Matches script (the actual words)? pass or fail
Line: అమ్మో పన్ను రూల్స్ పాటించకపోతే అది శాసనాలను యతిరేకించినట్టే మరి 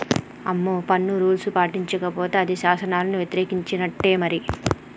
pass